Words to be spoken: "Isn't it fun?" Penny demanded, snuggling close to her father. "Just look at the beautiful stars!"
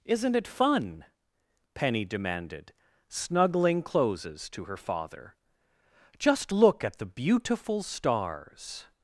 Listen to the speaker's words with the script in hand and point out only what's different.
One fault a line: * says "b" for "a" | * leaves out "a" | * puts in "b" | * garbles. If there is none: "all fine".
* says "closes" for "close"